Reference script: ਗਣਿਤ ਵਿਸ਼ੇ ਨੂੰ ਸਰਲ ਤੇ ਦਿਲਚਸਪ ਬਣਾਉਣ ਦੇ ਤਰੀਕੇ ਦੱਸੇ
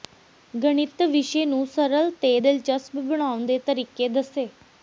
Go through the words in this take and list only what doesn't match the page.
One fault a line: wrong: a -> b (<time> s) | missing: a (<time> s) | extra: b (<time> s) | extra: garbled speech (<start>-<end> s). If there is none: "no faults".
no faults